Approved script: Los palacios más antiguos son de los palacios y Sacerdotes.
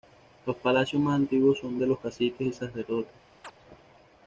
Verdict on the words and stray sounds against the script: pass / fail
fail